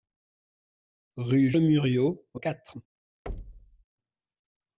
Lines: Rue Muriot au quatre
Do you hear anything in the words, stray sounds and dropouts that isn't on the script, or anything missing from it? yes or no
yes